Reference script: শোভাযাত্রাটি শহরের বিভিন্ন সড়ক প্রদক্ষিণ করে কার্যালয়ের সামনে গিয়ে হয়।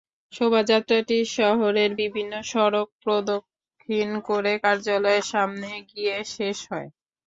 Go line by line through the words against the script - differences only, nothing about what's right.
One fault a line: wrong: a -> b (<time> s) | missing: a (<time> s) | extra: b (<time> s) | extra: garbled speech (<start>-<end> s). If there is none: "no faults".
extra: শেষ (6.4 s)